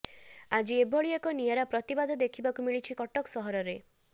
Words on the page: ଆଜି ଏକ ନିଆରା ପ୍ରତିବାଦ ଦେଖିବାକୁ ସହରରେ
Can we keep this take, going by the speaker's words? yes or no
no